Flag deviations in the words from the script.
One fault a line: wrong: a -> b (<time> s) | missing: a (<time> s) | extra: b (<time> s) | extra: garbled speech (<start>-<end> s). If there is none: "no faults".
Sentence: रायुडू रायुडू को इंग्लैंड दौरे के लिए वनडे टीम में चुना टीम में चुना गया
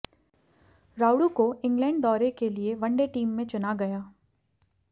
missing: रायुडू (1.3 s)
missing: टीम में चुना (3.7 s)